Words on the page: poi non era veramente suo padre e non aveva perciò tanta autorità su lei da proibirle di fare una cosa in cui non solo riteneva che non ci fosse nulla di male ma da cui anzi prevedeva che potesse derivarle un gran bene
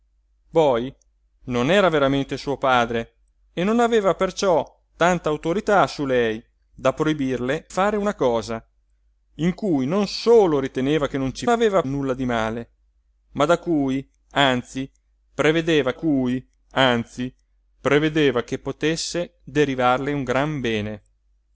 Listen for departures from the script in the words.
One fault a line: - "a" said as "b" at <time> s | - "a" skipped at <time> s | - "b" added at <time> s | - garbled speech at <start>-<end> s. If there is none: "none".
- "di" skipped at 7.7 s
- "fosse" said as "aveva" at 11.5 s
- "cui anzi prevedeva" added at 15.9 s